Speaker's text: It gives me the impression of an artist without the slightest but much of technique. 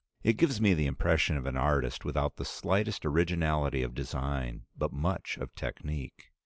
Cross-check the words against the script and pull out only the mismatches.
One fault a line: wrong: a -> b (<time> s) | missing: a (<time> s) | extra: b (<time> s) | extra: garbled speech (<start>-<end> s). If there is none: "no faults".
extra: originality of design (3.1 s)